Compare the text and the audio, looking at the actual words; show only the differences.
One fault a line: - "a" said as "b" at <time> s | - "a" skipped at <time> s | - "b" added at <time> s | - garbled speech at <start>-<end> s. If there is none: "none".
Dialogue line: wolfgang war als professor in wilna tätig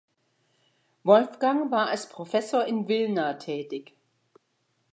none